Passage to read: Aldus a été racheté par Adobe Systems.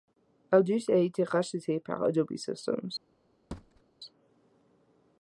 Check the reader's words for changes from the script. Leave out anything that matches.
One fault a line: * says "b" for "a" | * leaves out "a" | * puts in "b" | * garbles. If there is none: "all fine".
all fine